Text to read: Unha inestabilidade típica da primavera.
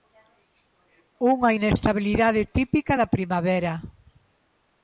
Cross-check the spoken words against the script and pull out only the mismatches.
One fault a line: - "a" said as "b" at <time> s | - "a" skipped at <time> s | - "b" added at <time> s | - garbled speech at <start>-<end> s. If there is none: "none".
none